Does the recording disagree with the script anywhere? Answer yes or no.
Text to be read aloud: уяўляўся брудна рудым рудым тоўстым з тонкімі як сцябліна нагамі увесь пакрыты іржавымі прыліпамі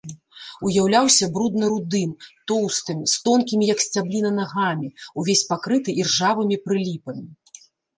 yes